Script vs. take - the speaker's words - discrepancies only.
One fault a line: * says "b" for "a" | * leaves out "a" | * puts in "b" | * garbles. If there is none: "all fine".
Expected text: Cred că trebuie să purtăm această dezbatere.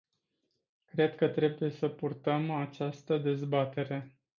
all fine